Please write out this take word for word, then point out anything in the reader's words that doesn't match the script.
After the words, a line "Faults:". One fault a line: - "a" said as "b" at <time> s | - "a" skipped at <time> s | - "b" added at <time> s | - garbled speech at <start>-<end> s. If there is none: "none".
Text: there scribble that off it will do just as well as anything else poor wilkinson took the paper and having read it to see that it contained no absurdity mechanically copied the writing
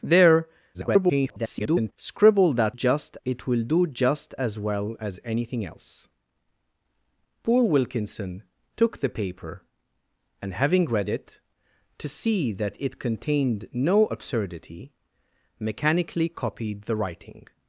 there [garbled] scribble that just it will do just as well as anything else poor wilkinson took the paper and having read it to see that it contained no absurdity mechanically copied the writing
Faults:
- garbled speech at 0.7-1.9 s
- "off" said as "just" at 2.7 s